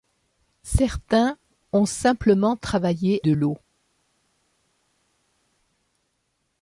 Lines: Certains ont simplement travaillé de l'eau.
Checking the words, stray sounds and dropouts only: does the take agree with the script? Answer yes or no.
yes